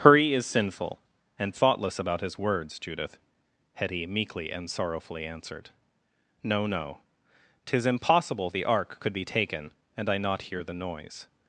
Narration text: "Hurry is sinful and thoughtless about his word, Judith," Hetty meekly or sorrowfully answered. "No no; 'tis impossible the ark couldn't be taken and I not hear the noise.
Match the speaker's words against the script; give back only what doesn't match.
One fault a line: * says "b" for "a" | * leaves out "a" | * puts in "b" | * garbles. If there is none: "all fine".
* says "words" for "word"
* says "and" for "or"
* says "could" for "couldn't"